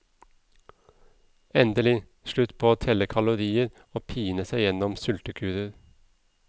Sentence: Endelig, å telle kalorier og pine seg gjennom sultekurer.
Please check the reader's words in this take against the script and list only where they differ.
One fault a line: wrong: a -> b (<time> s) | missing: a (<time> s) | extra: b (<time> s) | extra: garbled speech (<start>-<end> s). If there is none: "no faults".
extra: slutt på (2.3 s)